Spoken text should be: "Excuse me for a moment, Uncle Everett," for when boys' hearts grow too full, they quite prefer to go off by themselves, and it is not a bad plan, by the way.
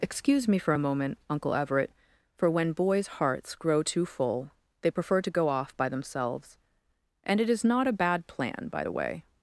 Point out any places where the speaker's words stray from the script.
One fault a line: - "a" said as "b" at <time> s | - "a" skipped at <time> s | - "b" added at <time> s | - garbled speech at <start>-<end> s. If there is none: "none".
- "quite" skipped at 4.9 s